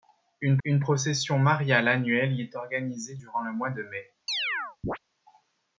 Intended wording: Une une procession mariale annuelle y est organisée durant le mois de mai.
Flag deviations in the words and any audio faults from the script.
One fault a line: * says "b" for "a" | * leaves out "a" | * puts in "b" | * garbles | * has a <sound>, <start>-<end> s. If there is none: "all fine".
* has a chirp, 4.3-5.0 s